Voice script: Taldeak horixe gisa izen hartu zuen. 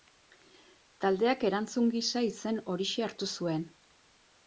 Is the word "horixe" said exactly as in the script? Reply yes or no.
no